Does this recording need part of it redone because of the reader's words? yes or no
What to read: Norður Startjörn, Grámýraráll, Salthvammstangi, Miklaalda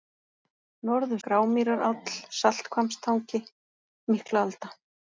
yes